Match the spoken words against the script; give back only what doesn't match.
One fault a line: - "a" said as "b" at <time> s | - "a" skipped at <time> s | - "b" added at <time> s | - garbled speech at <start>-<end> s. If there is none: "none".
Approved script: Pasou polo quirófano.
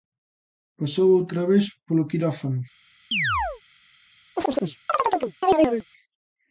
- "outra vez" added at 1.2 s